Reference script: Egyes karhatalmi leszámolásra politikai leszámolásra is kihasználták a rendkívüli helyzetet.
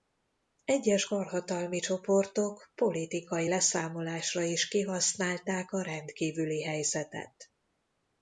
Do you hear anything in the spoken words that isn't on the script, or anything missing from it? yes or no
yes